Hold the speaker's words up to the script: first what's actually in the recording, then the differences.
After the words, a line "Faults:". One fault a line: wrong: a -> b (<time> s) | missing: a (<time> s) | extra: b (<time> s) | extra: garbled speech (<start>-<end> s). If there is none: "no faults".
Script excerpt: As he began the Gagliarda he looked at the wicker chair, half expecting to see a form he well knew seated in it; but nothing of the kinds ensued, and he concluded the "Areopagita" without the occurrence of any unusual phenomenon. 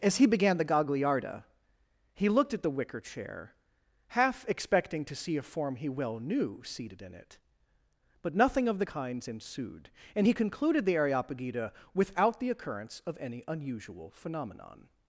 As he began the Gagliarda he looked at the wicker chair, half expecting to see a form he well knew seated in it; but nothing of the kinds ensued, and he concluded the "Areopagita" without the occurrence of any unusual phenomenon.
Faults:
no faults